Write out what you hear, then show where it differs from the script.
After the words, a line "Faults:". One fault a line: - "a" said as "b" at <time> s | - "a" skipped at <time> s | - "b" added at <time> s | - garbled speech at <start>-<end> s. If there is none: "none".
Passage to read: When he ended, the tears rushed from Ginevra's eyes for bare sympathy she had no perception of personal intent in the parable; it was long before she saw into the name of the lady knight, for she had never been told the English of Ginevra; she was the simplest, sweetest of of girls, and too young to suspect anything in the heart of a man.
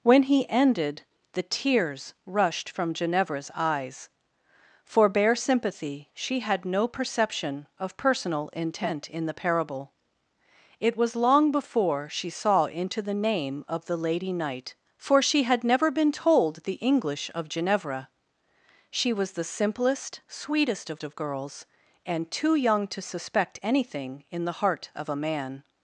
When he ended, the tears rushed from Ginevra's eyes for bare sympathy she had no perception of personal intent in the parable; it was long before she saw into the name of the lady knight, for she had never been told the English of Ginevra; she was the simplest, sweetest of of girls, and too young to suspect anything in the heart of a man.
Faults:
none